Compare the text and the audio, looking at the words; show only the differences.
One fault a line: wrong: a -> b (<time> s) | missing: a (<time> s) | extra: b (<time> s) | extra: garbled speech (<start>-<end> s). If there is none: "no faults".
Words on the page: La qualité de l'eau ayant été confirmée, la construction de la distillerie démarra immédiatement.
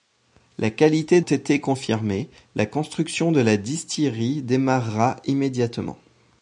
missing: de l'eau ayant (1.2 s)